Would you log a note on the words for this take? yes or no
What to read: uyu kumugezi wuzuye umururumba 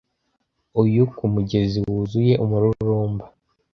no